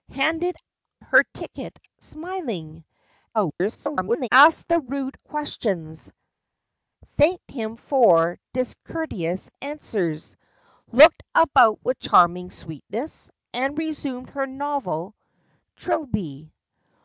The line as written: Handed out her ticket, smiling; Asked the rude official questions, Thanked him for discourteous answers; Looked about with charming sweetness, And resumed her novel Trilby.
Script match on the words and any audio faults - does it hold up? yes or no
no